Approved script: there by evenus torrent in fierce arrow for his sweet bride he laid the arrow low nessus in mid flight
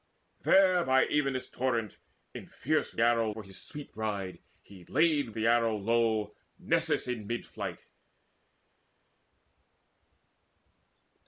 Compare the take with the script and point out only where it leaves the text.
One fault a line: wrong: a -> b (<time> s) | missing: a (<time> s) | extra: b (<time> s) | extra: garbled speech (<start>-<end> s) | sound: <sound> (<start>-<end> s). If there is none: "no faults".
no faults